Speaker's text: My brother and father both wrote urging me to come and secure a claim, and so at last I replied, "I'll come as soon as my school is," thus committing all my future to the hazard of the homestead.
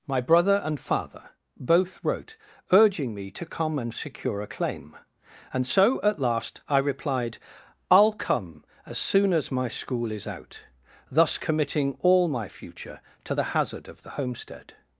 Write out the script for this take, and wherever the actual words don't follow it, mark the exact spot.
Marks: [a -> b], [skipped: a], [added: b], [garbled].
My brother and father both wrote urging me to come and secure a claim, and so at last I replied, "I'll come as soon as my school is," [added: out] thus committing all my future to the hazard of the homestead.